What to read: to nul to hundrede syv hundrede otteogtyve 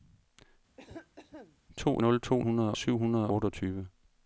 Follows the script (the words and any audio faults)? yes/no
no